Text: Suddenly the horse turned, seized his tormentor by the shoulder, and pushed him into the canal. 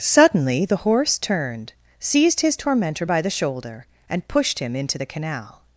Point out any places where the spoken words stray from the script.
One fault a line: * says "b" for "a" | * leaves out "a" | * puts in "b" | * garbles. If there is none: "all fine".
all fine